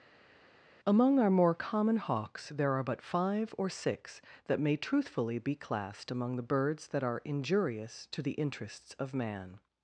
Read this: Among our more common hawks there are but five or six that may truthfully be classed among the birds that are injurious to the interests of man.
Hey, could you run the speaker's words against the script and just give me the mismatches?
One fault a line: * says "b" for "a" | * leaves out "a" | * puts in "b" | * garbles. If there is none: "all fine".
all fine